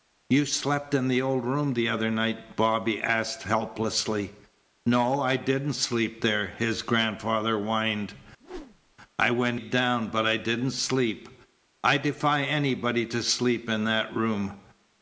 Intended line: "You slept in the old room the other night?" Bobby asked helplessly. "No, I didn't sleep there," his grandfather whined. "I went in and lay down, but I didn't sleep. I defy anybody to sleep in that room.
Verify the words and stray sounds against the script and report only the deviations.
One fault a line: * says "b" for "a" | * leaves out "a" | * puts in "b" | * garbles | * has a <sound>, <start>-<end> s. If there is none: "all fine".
* has a whoosh, 8.4-8.9 s
* leaves out "in and lay"